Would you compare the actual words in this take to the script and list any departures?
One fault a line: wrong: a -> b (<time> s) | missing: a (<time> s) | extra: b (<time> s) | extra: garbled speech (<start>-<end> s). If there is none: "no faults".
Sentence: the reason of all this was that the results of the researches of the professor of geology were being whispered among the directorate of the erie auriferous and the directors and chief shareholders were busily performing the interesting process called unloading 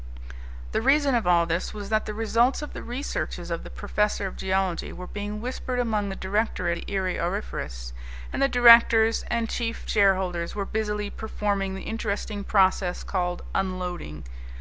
missing: of (6.8 s)